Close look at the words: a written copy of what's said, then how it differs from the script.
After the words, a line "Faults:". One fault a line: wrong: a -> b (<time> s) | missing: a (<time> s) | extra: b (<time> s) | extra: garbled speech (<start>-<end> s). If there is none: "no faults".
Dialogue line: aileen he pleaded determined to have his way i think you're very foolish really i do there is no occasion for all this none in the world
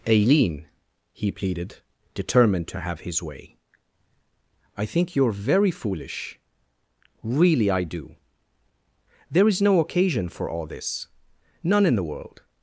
aileen he pleaded determined to have his way i think you're very foolish really i do there is no occasion for all this none in the world
Faults:
no faults